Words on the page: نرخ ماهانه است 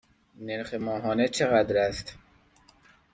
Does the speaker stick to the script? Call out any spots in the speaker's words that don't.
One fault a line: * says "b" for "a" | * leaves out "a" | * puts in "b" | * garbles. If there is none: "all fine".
* puts in "چقدر"